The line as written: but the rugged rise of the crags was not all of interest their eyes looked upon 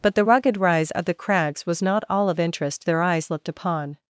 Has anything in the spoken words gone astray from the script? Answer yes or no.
no